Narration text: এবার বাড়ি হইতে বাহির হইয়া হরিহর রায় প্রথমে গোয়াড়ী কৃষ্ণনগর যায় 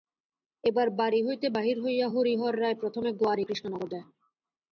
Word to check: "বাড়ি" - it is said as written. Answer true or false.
true